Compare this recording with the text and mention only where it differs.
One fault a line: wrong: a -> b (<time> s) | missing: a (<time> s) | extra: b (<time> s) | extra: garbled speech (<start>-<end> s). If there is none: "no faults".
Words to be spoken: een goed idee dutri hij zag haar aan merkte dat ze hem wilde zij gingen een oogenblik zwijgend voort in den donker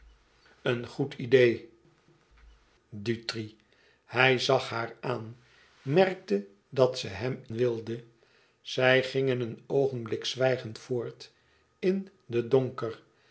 no faults